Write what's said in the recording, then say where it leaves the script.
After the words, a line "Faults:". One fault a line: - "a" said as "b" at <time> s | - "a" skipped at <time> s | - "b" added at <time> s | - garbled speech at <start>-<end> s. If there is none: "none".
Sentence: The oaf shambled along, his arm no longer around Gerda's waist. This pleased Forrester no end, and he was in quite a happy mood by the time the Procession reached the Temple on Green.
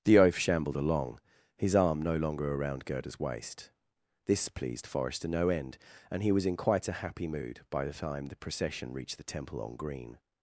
The oaf shambled along, his arm no longer around Gerda's waist. This pleased Forrester no end, and he was in quite a happy mood by the time the Procession reached the Temple on Green.
Faults:
none